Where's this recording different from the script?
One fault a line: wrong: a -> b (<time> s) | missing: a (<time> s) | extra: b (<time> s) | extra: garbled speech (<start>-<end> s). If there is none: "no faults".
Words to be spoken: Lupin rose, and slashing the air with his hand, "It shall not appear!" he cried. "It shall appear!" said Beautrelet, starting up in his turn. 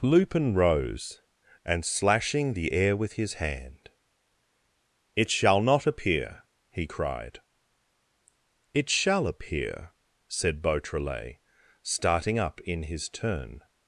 no faults